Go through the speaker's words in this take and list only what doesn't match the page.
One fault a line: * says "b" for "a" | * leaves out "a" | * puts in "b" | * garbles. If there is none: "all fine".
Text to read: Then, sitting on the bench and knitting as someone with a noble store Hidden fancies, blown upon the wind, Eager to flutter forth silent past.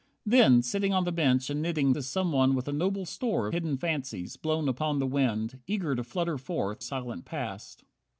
all fine